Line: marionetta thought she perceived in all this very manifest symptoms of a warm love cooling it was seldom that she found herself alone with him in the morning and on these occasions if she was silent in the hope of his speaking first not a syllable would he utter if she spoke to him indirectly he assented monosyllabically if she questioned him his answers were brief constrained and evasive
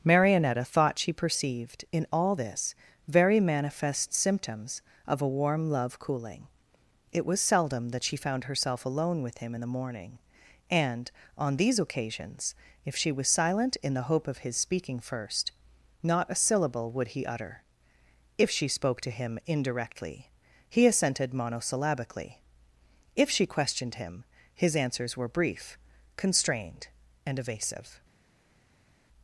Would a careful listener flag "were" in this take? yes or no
no